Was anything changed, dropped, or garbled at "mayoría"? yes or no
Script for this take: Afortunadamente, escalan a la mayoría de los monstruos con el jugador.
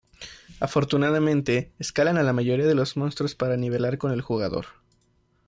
no